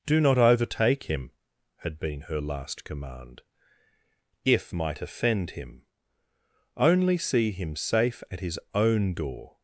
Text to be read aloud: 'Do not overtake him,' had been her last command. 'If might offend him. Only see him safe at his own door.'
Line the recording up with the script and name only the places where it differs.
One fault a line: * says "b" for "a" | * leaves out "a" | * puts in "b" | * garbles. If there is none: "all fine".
all fine